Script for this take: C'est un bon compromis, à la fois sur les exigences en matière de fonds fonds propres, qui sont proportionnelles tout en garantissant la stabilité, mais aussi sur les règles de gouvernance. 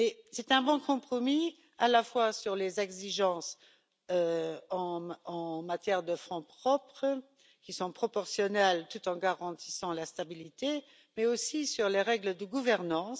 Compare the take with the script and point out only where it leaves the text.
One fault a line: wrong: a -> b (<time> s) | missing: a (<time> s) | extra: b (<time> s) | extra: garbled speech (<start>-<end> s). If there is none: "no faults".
missing: fonds (6.4 s)